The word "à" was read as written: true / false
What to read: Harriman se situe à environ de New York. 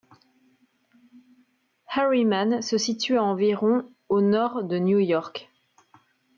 true